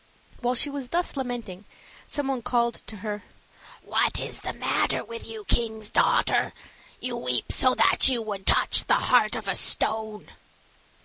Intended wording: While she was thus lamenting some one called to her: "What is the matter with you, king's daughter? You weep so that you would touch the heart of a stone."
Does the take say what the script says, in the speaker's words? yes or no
yes